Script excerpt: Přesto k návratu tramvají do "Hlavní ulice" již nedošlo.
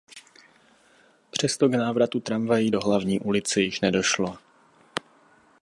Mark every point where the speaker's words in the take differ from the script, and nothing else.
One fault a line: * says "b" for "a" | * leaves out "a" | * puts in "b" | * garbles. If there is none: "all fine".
all fine